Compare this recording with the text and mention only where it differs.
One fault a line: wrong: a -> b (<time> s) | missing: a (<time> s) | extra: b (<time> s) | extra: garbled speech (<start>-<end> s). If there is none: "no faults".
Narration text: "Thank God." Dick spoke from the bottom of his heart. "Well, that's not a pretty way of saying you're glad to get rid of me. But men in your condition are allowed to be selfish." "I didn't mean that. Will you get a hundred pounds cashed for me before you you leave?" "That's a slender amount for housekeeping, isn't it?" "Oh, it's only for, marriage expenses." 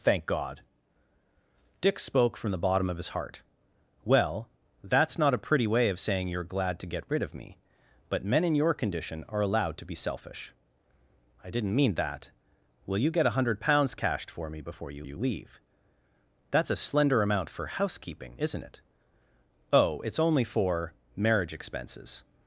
no faults